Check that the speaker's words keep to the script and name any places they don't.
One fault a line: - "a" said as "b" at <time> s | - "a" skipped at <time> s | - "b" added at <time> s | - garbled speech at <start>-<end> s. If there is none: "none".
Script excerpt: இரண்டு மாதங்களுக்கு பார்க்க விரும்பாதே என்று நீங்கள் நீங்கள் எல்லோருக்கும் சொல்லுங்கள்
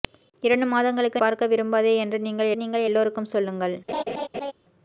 none